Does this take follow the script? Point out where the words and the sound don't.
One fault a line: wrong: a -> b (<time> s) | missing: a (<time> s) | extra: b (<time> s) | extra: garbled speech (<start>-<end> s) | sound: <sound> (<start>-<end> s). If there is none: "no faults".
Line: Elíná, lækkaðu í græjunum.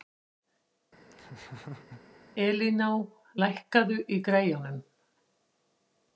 sound: laugh (1.1-2.0 s)